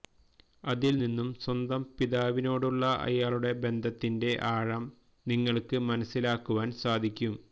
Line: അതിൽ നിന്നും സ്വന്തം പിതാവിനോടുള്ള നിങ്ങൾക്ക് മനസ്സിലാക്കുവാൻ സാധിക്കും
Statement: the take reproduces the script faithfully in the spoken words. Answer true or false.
false